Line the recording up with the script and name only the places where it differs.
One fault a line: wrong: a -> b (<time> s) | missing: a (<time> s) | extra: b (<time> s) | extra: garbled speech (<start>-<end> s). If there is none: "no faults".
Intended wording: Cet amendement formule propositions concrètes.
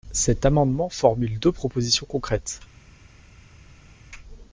extra: deux (1.4 s)